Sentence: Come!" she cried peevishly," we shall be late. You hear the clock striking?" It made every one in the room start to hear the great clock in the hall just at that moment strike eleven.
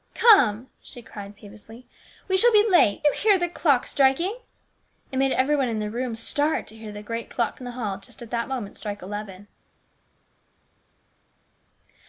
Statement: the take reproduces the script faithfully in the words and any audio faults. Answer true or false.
true